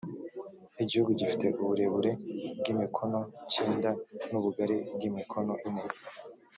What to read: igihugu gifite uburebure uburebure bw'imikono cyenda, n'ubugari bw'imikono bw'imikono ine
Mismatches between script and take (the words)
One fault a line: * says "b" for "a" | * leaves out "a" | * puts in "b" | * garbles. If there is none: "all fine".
* leaves out "uburebure"
* leaves out "bw'imikono"